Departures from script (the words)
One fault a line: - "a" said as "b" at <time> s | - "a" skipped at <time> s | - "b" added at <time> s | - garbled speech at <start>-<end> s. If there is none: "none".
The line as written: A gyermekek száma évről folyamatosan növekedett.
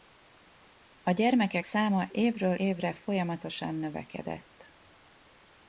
- "évre" added at 2.5 s